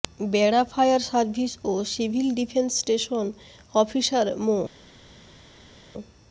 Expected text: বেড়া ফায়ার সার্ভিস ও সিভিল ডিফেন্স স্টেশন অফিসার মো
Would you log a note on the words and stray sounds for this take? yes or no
no